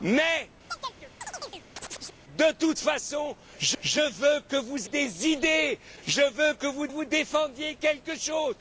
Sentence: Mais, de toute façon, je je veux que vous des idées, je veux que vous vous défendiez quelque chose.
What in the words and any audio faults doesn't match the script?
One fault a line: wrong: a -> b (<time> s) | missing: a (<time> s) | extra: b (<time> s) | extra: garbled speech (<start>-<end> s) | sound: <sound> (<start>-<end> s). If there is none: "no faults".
sound: chirp (0.7-2.2 s)